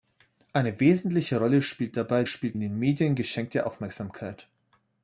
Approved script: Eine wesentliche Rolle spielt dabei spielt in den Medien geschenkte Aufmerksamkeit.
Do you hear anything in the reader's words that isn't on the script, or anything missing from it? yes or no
no